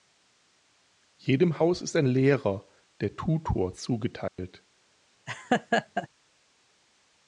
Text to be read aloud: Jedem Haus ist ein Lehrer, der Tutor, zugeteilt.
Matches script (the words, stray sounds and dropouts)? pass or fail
fail